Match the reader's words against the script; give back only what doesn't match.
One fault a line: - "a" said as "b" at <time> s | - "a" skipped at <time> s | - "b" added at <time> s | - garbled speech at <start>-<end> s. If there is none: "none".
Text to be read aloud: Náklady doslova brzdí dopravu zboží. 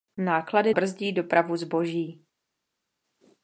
- "doslova" skipped at 0.7 s